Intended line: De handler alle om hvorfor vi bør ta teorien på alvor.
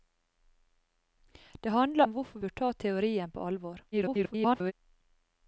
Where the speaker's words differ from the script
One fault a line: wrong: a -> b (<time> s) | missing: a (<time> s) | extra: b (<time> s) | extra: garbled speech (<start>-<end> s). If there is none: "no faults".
missing: alle (2.0 s)
missing: vi (2.4 s)
extra: garbled speech (3.9-4.7 s)